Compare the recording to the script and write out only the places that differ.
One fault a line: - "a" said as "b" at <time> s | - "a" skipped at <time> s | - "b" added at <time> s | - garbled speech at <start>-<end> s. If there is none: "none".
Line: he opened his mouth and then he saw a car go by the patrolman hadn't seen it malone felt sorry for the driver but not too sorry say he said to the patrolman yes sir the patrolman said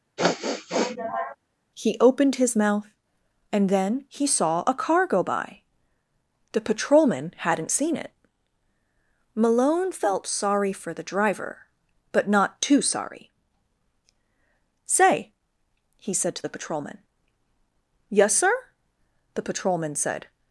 none